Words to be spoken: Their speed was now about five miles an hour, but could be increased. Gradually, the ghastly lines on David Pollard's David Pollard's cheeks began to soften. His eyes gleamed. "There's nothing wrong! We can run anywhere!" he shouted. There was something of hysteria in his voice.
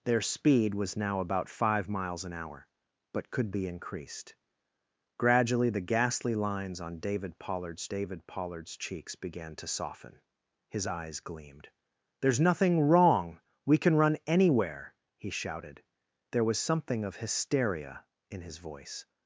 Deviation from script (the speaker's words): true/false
false